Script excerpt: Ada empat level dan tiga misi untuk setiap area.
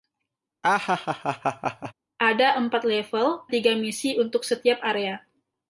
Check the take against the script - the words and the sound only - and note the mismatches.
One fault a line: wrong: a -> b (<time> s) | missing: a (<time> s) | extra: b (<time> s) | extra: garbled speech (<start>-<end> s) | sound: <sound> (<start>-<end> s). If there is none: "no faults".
sound: laugh (0.6-1.9 s)
missing: dan (3.4 s)